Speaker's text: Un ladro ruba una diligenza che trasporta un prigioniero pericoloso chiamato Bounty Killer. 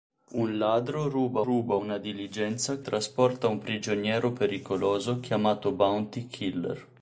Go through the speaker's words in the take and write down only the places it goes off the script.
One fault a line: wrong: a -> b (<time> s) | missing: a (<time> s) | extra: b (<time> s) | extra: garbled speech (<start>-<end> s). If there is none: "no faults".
extra: ruba (1.4 s)
missing: che (2.8 s)